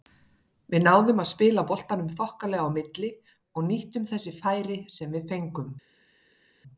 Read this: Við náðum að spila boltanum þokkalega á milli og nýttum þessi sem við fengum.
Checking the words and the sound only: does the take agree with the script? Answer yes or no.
no